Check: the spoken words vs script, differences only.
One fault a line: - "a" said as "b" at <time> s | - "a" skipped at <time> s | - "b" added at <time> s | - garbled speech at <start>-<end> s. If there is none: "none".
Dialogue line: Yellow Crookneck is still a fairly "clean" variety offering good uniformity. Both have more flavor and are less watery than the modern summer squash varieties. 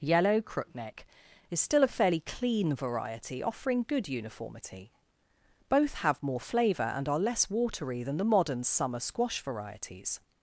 none